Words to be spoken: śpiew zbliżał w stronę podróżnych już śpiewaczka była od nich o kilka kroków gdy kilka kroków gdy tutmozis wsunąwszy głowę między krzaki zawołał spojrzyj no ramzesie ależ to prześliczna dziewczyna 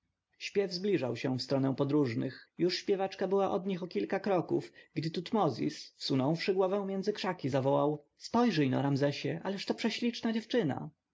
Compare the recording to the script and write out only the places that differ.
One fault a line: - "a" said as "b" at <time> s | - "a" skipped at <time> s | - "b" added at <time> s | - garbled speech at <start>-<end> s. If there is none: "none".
- "się" added at 1.1 s
- "kilka kroków gdy" skipped at 5.1 s